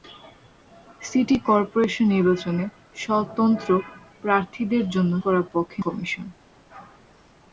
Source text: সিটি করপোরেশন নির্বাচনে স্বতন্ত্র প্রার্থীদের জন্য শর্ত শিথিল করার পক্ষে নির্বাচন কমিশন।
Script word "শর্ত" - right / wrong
wrong